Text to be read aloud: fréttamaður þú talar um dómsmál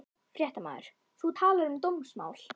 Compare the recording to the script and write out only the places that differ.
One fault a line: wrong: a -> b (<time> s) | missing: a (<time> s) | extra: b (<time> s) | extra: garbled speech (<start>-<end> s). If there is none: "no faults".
no faults